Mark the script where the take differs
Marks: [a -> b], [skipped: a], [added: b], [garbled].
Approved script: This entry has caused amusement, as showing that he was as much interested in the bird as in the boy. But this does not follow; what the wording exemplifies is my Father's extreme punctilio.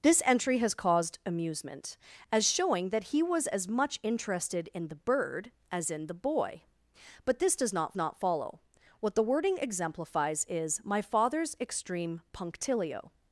This entry has caused amusement, as showing that he was as much interested in the bird as in the boy. But this does not [added: not] follow; what the wording exemplifies is my Father's extreme punctilio.